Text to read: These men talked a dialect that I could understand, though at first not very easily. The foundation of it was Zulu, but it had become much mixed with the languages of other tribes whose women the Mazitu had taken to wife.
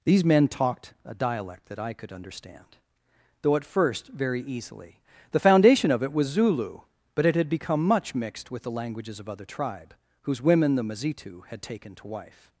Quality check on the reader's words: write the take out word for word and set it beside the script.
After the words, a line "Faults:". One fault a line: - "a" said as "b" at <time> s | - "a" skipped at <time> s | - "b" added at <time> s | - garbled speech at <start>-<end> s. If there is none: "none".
These men talked a dialect that I could understand, though at first very easily. The foundation of it was Zulu, but it had become much mixed with the languages of other tribe whose women the Mazitu had taken to wife.
Faults:
- "not" skipped at 4.1 s
- "tribes" said as "tribe" at 9.4 s